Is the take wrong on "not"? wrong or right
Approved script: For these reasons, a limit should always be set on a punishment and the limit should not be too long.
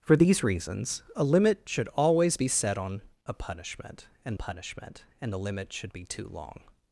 wrong